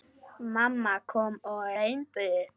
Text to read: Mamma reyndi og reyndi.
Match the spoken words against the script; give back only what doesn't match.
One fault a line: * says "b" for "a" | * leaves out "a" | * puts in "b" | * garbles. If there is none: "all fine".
* says "kom" for "reyndi"